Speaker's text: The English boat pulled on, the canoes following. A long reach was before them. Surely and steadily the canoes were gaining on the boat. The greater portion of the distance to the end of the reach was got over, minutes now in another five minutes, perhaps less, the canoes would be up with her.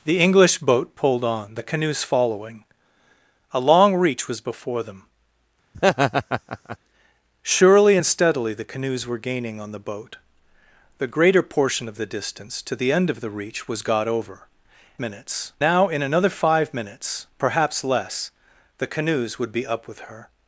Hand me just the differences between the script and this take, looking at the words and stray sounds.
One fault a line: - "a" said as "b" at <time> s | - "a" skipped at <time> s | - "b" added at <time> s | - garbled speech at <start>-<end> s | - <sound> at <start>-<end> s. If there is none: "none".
- laugh at 5.7-6.8 s